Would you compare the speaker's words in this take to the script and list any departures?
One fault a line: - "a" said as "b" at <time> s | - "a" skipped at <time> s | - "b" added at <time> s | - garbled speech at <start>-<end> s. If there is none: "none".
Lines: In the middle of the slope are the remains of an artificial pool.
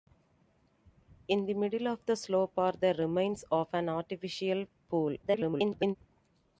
- garbled speech at 5.2-6.0 s